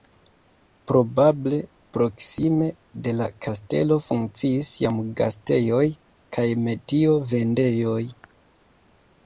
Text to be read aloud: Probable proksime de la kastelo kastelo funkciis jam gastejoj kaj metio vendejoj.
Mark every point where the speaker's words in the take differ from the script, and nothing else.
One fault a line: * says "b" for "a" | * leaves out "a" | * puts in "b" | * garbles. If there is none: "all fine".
* leaves out "kastelo"